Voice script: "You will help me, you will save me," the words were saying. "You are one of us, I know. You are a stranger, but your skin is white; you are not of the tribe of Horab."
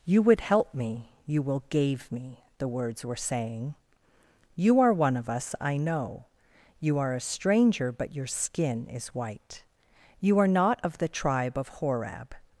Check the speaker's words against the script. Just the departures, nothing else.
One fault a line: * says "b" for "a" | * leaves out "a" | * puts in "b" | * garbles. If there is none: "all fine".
* says "would" for "will"
* says "gave" for "save"